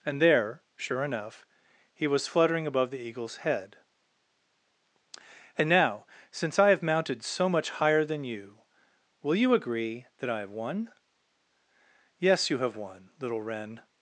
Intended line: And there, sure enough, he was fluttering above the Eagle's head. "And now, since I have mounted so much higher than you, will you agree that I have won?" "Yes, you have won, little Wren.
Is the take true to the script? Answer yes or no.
yes